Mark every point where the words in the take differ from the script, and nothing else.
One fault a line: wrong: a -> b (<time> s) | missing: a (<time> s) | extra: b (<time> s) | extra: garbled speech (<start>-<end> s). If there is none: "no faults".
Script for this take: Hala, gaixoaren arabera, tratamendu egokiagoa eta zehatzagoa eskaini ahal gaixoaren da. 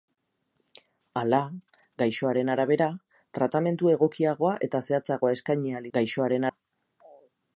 no faults